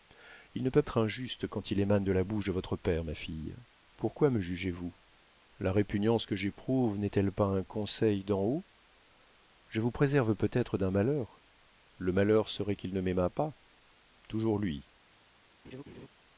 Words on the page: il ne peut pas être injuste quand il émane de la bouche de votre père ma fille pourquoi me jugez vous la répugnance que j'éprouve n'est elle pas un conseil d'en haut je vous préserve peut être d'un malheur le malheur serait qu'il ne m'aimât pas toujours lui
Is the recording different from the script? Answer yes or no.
yes